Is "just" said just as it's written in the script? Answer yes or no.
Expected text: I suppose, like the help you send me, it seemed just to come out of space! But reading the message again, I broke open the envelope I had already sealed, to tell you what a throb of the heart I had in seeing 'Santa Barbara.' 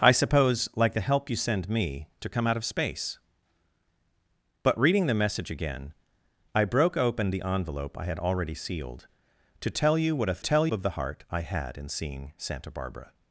no